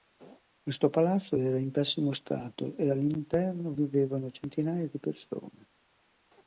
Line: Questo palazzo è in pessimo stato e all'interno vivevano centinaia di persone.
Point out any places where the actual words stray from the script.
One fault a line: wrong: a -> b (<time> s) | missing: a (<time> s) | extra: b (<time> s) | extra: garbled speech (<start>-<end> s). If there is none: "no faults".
wrong: è -> era (1.3 s)